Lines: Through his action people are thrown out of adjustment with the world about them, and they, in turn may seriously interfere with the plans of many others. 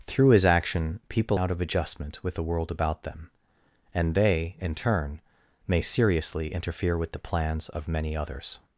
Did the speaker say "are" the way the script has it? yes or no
no